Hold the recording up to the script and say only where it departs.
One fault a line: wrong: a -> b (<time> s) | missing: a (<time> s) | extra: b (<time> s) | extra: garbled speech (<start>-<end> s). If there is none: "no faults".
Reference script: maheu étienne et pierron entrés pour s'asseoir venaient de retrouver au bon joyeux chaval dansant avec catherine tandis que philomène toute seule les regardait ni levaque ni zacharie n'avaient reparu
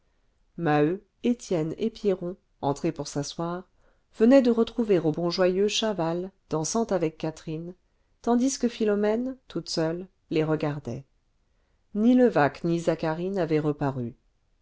no faults